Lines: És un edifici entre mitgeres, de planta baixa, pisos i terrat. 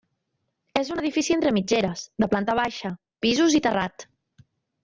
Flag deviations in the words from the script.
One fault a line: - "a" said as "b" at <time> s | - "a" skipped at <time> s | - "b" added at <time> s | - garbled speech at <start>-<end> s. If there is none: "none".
none